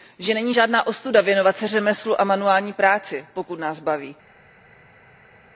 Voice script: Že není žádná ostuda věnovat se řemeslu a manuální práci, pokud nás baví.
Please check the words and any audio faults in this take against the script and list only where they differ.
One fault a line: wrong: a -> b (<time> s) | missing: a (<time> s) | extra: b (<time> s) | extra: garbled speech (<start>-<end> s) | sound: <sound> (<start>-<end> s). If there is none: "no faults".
no faults